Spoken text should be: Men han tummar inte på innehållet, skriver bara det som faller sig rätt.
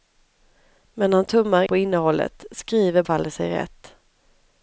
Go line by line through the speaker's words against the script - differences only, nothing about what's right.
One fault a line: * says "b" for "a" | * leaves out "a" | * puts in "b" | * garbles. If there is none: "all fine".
* leaves out "inte"
* leaves out "bara det som"